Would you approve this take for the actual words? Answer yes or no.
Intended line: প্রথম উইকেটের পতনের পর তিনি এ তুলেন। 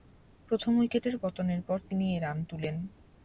no